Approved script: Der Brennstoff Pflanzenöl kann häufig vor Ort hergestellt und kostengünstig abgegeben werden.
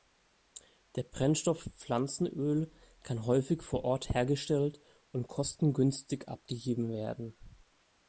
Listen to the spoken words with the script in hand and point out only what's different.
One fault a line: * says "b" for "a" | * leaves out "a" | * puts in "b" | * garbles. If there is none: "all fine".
all fine